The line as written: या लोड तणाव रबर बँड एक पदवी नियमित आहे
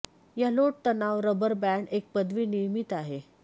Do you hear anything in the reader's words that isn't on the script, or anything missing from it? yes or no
no